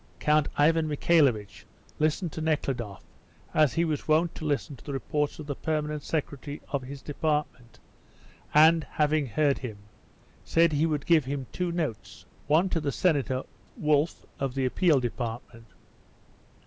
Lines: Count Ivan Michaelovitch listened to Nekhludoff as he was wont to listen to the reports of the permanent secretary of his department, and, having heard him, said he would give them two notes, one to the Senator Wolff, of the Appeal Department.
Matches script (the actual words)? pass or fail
fail